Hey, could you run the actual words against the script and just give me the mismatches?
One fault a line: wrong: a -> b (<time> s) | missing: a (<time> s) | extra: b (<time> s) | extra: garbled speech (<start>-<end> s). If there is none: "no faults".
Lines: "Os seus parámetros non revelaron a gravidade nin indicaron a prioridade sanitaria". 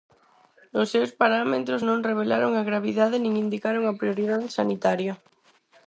no faults